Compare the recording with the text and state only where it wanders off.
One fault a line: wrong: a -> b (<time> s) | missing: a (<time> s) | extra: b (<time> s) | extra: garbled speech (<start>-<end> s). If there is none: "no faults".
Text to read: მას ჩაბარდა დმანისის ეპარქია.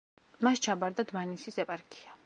no faults